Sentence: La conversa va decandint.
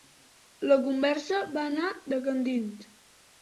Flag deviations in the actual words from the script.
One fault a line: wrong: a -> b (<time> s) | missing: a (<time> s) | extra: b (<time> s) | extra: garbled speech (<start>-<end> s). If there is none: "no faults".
extra: anar (1.7 s)